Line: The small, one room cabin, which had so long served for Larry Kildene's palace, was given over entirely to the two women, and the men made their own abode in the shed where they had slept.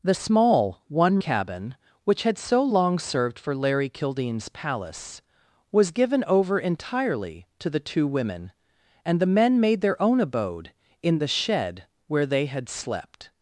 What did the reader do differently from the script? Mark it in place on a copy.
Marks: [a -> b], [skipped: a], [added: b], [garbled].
The small, one [skipped: room] cabin, which had so long served for Larry Kildene's palace, was given over entirely to the two women, and the men made their own abode in the shed where they had slept.